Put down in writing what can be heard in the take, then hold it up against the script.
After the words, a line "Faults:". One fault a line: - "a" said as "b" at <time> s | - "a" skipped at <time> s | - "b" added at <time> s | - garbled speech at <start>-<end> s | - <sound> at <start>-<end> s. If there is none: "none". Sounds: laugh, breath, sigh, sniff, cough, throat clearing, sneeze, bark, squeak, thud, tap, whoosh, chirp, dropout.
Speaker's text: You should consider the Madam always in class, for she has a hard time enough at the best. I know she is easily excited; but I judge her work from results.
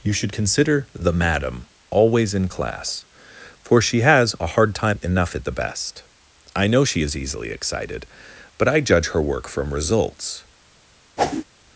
You should consider the Madam always in class, for she has a hard time enough at the best. I know she is easily excited; but I judge her work from results.
Faults:
- whoosh at 11.2-11.4 s